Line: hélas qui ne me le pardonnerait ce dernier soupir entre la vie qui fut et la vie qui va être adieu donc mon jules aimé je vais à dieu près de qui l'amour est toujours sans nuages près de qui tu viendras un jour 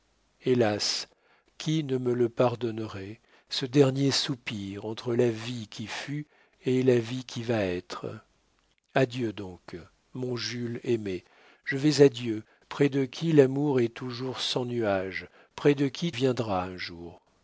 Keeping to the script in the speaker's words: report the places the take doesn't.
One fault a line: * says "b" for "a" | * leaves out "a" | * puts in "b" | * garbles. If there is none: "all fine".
* leaves out "tu"